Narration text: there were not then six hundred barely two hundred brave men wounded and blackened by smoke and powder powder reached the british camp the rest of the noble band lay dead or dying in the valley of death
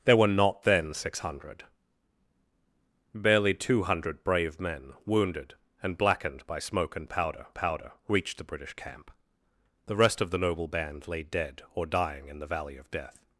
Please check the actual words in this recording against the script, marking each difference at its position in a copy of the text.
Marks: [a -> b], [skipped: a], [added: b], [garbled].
there were not then six hundred barely two hundred brave men wounded and blackened by smoke and powder powder reached the british camp the rest of the noble band lay dead or dying in the valley of death